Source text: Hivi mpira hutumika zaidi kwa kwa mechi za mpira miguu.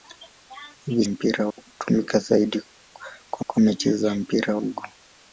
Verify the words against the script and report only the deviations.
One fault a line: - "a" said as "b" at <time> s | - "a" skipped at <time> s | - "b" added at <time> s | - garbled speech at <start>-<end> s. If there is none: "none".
none